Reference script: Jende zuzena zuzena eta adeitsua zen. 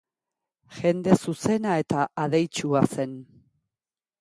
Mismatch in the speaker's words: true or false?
true